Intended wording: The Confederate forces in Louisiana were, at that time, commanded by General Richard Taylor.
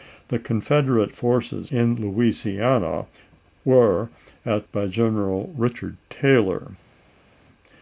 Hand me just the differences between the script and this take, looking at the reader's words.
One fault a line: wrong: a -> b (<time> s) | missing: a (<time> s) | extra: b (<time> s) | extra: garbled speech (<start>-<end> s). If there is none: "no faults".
missing: that time commanded (4.7 s)